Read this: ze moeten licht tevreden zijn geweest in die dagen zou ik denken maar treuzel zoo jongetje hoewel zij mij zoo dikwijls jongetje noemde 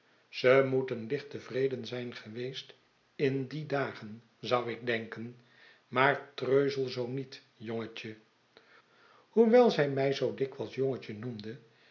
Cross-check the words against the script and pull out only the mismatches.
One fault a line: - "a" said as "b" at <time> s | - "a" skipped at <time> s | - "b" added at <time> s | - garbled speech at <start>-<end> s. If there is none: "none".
- "niet" added at 7.1 s